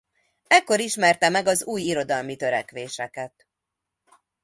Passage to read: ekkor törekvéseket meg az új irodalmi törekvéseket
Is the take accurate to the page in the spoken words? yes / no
no